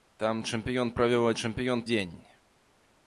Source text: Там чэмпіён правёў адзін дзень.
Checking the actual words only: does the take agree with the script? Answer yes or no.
no